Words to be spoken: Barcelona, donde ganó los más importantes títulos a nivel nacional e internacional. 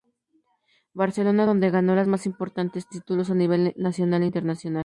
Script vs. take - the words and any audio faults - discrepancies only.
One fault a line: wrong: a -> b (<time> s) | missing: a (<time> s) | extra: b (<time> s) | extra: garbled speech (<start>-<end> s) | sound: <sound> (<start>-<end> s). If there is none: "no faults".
no faults